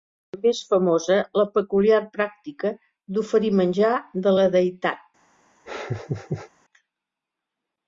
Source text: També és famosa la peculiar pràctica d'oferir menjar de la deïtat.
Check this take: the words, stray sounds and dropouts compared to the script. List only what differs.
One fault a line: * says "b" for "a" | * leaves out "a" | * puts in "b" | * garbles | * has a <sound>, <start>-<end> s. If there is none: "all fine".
* has a laugh, 5.7-6.5 s